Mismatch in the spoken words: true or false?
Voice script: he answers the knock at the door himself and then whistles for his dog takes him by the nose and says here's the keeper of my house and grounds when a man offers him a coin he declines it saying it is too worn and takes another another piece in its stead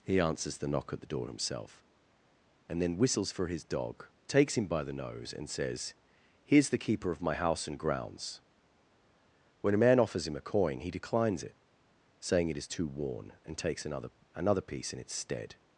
false